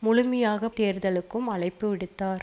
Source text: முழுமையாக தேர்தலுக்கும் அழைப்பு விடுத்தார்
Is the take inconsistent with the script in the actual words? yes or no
no